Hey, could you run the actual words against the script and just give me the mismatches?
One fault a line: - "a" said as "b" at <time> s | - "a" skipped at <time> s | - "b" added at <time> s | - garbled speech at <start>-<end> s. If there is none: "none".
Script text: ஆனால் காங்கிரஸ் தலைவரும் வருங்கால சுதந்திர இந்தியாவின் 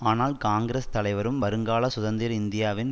none